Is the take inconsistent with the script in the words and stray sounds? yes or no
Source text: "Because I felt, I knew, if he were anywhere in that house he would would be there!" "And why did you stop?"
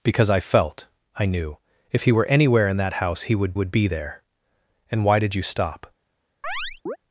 yes